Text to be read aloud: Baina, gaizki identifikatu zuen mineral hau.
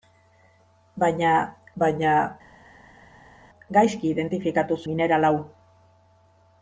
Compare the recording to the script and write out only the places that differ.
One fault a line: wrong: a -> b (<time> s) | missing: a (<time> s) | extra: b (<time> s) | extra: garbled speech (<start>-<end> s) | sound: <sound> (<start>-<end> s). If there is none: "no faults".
extra: baina (1.8 s)
missing: zuen (4.8 s)